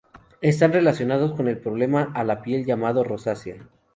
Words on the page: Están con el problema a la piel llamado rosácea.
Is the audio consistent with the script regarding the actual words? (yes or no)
no